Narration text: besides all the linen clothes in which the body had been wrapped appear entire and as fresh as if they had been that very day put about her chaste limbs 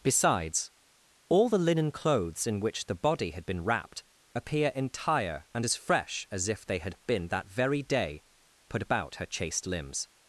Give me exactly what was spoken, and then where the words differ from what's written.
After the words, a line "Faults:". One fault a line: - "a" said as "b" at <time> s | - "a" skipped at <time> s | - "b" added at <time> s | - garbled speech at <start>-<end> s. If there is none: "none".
besides all the linen clothes in which the body had been wrapped appear entire and as fresh as if they had been that very day put about her chaste limbs
Faults:
none